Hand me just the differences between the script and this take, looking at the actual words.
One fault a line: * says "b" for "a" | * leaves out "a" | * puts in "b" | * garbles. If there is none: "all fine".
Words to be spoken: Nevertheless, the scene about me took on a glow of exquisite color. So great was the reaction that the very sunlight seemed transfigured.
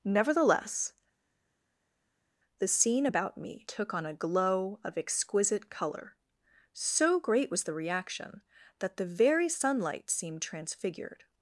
all fine